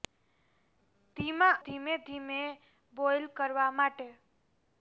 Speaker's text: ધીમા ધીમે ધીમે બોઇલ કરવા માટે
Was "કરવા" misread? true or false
false